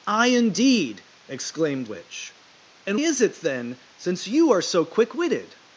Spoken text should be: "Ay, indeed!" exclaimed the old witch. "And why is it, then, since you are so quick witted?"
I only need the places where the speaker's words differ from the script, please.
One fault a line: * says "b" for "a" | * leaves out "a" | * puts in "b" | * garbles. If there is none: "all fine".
* leaves out "the old"
* leaves out "why"